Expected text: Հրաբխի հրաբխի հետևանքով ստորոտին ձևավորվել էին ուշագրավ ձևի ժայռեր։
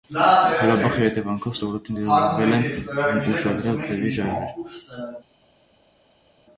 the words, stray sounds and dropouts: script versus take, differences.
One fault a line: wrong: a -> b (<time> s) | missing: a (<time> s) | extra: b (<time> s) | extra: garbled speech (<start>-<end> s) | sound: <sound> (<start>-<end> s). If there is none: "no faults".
missing: հրաբխի (1.0 s)
wrong: էին -> են (2.6 s)